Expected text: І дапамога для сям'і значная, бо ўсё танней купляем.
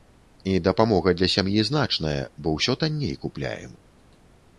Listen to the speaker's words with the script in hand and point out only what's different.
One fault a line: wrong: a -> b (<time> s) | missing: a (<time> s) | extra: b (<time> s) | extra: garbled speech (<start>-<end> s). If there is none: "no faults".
no faults